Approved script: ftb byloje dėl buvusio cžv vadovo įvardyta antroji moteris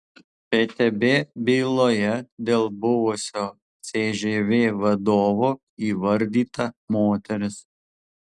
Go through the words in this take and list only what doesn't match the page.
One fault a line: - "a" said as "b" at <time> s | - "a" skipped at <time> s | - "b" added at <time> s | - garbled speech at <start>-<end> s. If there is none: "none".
- "antroji" skipped at 6.7 s